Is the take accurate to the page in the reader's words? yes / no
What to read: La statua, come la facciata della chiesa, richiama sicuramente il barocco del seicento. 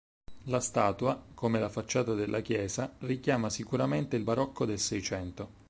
yes